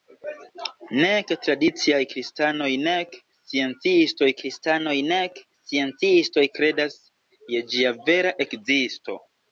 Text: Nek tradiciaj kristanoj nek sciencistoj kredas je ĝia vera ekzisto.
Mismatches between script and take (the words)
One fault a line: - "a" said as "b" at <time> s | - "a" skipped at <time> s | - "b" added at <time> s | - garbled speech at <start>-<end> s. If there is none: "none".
- "kristanoj nek sciencistoj" added at 4.4 s